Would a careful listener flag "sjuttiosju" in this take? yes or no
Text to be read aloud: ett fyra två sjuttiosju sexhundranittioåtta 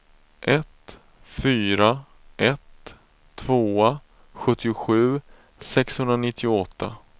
no